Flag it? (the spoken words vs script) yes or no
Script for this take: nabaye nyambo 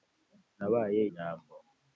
no